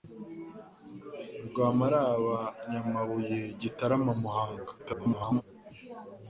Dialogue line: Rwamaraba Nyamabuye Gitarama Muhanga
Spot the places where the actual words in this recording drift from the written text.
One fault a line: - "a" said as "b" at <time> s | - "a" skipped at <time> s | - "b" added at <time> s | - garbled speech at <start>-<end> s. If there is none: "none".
- garbled speech at 4.8-5.4 s